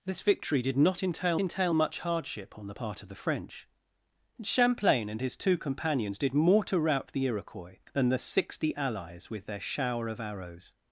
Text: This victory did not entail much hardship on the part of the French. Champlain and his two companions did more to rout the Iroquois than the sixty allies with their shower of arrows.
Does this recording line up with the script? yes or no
no